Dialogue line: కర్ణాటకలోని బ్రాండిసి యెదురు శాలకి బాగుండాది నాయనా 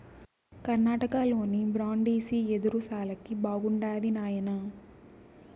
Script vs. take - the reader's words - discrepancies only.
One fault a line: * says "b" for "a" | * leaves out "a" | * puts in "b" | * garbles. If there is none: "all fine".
all fine